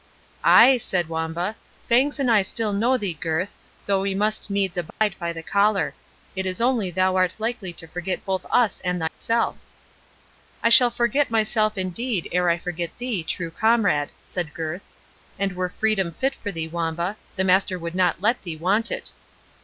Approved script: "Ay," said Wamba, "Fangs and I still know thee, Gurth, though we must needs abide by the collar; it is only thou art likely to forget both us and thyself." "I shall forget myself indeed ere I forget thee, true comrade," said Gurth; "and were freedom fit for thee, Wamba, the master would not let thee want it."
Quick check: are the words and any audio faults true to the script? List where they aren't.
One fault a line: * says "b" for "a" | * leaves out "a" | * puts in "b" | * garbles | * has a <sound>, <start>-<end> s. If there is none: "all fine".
* has a dropout, 4.9-5.0 s
* has a dropout, 9.1-9.2 s